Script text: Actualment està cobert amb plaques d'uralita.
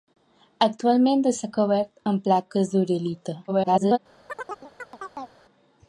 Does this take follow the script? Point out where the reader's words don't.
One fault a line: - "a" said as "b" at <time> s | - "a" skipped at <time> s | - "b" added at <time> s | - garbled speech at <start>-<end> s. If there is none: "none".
- garbled speech at 3.5-4.0 s